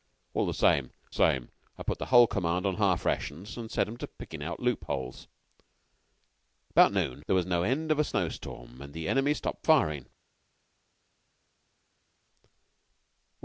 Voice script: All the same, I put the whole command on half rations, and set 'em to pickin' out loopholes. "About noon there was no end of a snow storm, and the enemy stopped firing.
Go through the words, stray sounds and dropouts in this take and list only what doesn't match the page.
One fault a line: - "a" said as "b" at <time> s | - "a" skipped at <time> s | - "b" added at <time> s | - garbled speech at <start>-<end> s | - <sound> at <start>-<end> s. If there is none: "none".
- "same" added at 1.1 s